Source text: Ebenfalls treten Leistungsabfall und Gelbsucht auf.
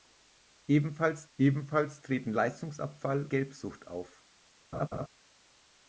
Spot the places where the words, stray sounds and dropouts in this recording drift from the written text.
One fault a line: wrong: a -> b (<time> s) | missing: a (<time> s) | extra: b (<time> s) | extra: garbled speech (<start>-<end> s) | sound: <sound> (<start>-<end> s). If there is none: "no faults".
extra: ebenfalls (1.4 s)
missing: und (3.3 s)
sound: laugh (4.7-5.1 s)